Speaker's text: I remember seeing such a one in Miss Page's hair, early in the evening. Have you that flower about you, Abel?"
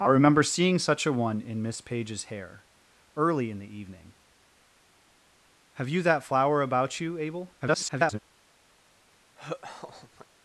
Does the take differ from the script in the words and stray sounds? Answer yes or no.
yes